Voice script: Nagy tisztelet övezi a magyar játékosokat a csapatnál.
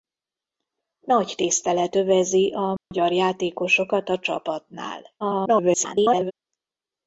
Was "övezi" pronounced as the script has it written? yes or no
yes